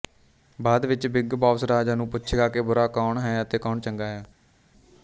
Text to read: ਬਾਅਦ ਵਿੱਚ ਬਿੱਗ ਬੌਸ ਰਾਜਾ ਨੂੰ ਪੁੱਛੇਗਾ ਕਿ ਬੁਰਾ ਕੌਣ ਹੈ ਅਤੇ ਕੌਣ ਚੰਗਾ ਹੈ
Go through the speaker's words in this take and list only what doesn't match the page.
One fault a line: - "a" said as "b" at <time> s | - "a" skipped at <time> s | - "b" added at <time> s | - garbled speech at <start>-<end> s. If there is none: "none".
none